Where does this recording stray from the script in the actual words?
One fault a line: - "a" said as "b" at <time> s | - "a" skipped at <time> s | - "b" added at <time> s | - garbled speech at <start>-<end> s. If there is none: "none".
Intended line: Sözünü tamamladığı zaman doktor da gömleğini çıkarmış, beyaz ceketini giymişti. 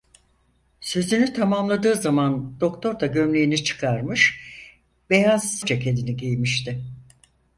none